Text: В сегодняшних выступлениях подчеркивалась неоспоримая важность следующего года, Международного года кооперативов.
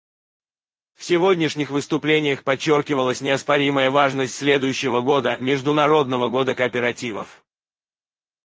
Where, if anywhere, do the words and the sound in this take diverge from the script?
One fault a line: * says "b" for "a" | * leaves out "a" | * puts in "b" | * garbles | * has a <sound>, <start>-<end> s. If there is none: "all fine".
all fine